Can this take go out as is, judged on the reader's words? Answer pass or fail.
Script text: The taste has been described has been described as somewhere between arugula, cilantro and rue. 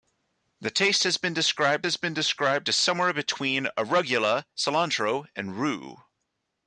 pass